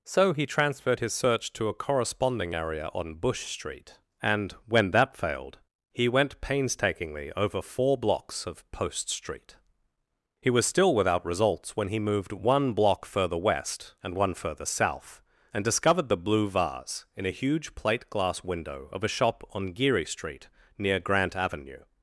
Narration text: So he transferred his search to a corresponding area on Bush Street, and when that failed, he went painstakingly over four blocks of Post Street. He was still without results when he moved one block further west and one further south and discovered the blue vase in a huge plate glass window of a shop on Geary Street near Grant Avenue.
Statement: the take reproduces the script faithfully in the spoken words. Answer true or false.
true